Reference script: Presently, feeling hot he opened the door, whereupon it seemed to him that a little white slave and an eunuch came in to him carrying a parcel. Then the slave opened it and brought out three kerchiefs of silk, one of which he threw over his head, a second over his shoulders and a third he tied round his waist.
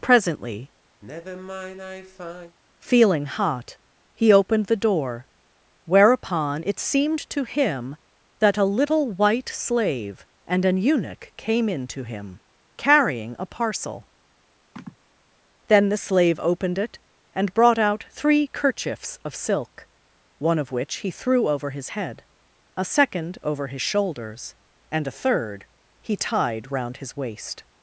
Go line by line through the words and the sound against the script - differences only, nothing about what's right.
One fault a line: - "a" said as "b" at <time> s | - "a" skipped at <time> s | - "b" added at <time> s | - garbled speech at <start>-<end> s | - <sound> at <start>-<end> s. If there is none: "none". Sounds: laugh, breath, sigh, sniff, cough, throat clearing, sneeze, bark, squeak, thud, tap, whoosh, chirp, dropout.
- sigh at 1.0-2.6 s
- sigh at 14.8-15.0 s